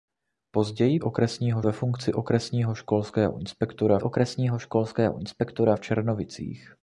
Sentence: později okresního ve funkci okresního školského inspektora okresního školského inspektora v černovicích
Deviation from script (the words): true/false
false